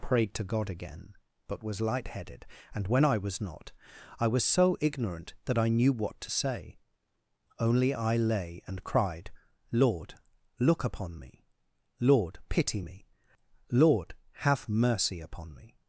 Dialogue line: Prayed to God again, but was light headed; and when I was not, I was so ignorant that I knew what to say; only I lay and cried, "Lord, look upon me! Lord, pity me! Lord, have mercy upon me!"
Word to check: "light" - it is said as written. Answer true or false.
true